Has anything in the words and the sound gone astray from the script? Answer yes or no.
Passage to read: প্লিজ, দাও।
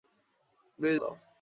no